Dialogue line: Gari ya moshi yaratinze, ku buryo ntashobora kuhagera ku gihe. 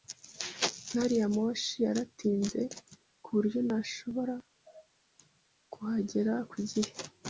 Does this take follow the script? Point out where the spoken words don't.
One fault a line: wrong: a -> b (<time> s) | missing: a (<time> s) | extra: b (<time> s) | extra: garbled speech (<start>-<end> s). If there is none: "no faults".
no faults